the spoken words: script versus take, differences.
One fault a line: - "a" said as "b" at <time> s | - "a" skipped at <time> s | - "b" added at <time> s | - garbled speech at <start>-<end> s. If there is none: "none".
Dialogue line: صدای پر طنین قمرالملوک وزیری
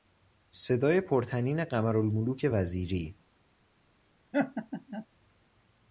none